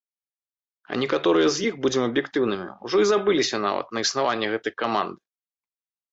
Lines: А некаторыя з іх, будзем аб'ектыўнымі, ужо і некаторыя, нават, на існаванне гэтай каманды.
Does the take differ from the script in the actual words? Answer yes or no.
yes